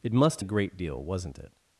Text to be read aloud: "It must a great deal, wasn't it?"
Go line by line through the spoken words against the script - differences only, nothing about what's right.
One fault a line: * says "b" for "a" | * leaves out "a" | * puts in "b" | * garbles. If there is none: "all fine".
all fine